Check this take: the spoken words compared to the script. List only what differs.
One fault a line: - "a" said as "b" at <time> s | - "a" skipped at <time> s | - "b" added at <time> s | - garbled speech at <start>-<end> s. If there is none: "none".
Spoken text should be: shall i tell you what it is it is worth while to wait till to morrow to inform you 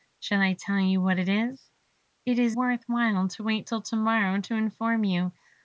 none